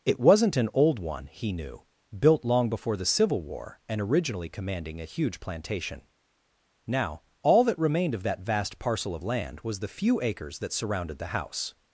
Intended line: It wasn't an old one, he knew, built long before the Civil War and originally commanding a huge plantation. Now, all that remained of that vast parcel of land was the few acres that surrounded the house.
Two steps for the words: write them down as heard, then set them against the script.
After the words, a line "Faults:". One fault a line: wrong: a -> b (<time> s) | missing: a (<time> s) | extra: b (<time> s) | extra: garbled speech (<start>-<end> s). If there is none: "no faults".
It wasn't an old one, he knew, built long before the Civil War and originally commanding a huge plantation. Now, all that remained of that vast parcel of land was the few acres that surrounded the house.
Faults:
no faults